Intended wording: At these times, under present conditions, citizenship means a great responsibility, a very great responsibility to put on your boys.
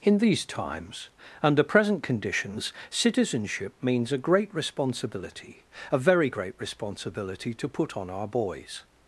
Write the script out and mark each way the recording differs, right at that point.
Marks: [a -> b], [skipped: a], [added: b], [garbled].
[At -> In] these times, under present conditions, citizenship means a great responsibility, a very great responsibility to put on [your -> our] boys.